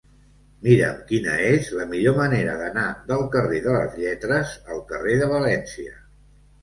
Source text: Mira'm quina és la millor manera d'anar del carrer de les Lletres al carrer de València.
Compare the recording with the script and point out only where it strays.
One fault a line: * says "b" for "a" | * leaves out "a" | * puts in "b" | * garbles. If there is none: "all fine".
all fine